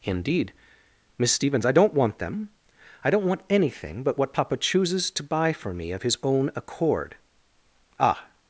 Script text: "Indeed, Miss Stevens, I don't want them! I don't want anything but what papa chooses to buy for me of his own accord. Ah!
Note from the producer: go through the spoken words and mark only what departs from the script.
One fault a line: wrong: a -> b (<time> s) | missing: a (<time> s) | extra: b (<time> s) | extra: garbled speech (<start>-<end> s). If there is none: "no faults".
no faults